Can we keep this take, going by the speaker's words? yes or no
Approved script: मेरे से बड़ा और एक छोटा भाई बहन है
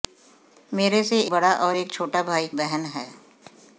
yes